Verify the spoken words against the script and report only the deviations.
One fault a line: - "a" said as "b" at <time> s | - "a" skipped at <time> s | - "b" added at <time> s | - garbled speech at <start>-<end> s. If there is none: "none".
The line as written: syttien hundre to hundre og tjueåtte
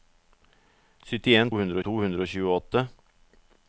none